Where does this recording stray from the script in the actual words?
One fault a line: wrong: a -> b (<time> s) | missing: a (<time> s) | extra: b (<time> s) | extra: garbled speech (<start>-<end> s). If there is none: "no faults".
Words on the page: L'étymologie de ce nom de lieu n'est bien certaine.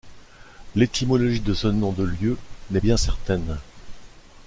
no faults